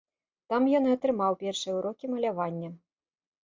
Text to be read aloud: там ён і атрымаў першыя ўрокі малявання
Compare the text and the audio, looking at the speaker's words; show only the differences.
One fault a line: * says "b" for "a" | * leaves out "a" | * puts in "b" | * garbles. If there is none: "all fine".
all fine